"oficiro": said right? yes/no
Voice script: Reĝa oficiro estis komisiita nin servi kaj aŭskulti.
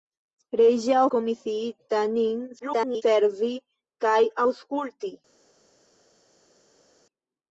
no